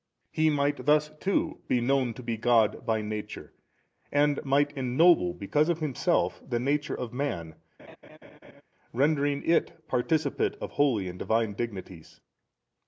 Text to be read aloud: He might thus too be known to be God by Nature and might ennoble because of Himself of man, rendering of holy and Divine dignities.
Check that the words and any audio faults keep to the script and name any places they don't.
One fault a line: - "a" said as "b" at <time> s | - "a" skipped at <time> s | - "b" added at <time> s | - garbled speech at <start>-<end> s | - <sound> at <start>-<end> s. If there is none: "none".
- "the nature" added at 6.4 s
- laugh at 7.8-8.6 s
- "it participate" added at 9.4 s